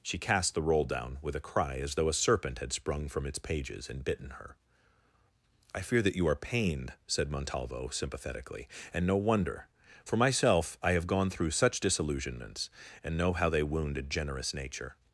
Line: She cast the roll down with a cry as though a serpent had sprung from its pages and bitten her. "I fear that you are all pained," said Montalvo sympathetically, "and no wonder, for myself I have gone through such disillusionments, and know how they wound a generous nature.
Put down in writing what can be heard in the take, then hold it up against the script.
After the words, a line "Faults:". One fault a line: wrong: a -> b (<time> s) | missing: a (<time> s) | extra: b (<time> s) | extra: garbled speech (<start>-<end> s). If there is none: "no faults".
She cast the roll down with a cry as though a serpent had sprung from its pages and bitten her. "I fear that you are pained," said Montalvo sympathetically, "and no wonder, for myself I have gone through such disillusionments, and know how they wound a generous nature.
Faults:
missing: all (6.3 s)